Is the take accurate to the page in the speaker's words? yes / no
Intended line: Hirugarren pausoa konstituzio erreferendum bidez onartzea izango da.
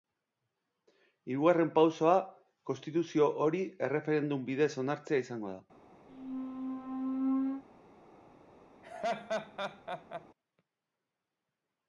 no